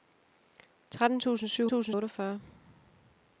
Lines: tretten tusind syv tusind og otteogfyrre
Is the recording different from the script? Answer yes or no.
no